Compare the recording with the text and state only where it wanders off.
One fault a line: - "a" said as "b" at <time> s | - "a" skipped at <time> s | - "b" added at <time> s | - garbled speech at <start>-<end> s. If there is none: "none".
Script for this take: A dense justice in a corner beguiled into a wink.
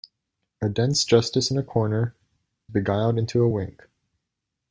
none